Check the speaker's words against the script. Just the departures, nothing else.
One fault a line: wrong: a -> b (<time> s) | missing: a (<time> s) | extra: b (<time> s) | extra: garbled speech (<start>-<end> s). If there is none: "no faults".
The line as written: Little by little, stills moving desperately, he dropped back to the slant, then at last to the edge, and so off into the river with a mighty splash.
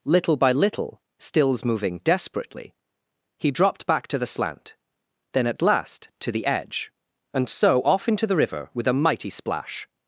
no faults